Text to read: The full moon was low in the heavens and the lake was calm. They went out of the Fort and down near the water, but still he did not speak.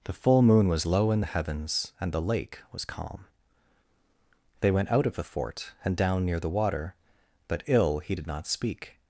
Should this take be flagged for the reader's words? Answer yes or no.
yes